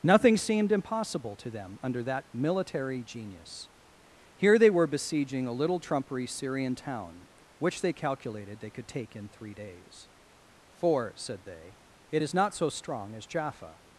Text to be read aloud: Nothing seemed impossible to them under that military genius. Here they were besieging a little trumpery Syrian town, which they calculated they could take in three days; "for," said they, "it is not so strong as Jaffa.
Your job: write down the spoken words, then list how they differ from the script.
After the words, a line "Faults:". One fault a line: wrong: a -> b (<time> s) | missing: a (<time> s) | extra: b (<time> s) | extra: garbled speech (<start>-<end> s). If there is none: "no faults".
Nothing seemed impossible to them under that military genius. Here they were besieging a little trumpery Syrian town, which they calculated they could take in three days; "for," said they, "it is not so strong as Jaffa.
Faults:
no faults